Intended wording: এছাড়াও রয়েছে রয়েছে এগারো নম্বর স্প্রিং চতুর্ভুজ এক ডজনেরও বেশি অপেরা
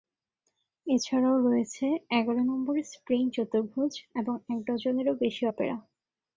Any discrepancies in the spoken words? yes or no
yes